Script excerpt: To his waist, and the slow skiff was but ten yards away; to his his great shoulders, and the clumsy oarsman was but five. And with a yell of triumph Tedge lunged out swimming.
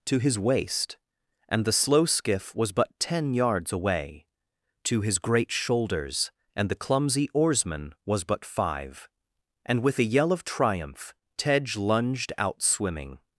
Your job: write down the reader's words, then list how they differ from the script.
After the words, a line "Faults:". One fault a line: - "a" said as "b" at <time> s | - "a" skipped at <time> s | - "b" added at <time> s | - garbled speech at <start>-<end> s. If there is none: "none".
To his waist, and the slow skiff was but ten yards away; to his great shoulders, and the clumsy oarsman was but five. And with a yell of triumph Tedge lunged out swimming.
Faults:
- "his" skipped at 5.2 s